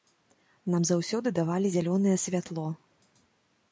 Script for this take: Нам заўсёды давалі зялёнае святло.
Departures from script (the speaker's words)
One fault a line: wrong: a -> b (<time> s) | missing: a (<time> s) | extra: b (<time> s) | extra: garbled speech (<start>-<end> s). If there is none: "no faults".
no faults